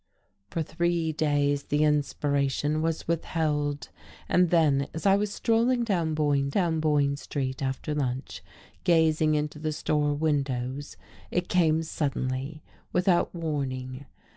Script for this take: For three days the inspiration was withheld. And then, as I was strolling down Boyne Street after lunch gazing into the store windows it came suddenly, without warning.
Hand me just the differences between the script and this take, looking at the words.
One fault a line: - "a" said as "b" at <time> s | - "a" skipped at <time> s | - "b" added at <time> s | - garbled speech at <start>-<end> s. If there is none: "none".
- "down Boyne" added at 6.5 s